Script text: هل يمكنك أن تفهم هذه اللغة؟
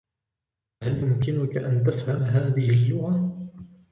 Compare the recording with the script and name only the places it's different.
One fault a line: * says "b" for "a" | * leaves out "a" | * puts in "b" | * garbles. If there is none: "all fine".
all fine